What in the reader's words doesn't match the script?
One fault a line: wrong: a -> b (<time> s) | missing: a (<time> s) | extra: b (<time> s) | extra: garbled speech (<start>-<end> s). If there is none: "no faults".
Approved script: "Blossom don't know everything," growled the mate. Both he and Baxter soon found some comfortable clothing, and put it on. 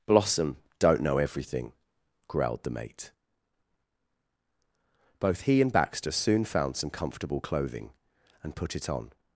no faults